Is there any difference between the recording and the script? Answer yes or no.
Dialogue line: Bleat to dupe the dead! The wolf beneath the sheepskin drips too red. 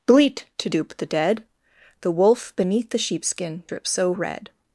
yes